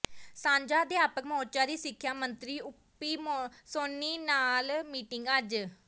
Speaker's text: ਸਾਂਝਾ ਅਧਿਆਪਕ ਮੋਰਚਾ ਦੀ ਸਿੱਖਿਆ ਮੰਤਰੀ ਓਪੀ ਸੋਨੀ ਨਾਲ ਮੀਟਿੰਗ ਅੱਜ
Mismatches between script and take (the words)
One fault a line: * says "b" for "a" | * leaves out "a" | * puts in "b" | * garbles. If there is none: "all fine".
all fine